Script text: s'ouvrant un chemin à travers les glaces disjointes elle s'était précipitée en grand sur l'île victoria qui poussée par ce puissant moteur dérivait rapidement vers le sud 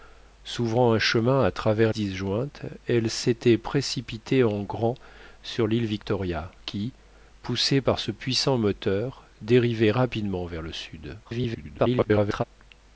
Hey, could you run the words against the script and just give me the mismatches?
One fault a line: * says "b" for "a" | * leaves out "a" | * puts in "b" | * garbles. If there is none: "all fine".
* leaves out "les glaces"
* garbles